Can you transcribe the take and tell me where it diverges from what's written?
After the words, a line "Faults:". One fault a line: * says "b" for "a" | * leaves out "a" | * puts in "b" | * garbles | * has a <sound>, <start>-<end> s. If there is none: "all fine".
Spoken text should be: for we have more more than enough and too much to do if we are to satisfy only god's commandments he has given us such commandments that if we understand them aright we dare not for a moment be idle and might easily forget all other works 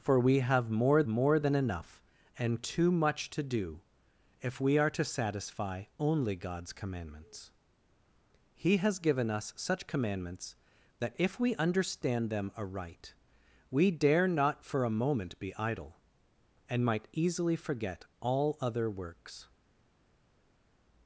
for we have more more than enough and too much to do if we are to satisfy only god's commandments he has given us such commandments that if we understand them aright we dare not for a moment be idle and might easily forget all other works
Faults:
all fine